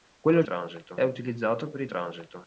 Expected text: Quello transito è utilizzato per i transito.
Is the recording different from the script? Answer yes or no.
no